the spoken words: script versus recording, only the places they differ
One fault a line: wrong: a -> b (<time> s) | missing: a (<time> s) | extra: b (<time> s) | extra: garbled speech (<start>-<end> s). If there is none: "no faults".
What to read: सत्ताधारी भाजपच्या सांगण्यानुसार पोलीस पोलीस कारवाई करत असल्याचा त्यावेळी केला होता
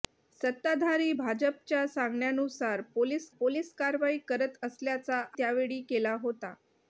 no faults